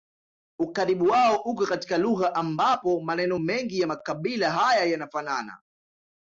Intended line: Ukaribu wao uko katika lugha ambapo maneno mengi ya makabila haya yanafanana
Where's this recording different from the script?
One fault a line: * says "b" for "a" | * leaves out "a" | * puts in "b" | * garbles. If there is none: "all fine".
all fine